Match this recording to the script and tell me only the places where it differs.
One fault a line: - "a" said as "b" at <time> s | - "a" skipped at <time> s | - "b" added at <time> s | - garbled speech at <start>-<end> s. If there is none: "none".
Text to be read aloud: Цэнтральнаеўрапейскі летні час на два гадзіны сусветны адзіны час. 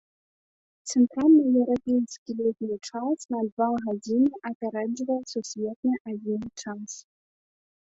- "апярэджвае" added at 4.5 s